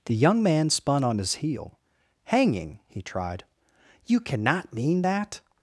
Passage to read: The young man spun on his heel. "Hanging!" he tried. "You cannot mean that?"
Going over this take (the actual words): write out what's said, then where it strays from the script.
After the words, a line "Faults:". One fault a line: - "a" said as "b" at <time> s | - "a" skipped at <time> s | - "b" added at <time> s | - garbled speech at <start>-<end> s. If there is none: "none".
The young man spun on his heel. "Hanging!" he tried. "You cannot mean that?"
Faults:
none